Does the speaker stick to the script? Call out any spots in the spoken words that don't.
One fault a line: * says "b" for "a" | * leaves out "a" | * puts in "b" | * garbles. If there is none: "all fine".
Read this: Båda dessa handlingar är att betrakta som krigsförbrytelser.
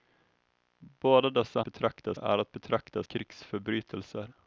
* says "betrakta" for "handlingar"
* leaves out "som"